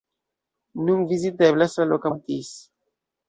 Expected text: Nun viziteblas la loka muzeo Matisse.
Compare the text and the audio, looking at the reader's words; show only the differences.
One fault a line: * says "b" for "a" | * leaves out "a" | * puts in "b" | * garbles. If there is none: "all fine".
* leaves out "muzeo"